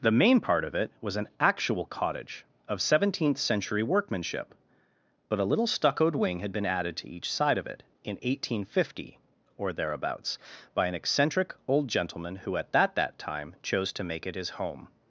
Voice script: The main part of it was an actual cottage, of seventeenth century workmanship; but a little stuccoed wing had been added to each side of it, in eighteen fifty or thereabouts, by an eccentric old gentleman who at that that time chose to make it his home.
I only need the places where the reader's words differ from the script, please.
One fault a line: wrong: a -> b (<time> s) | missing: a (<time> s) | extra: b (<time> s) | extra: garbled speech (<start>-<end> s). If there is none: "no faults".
no faults